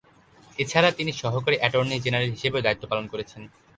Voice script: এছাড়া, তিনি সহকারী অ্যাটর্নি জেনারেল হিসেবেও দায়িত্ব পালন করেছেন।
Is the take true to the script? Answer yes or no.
yes